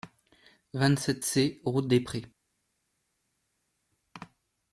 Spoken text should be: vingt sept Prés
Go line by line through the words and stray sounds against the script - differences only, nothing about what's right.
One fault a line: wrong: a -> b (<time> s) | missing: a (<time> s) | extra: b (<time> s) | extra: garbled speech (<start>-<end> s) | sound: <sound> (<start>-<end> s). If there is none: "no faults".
extra: C route des (1.2 s)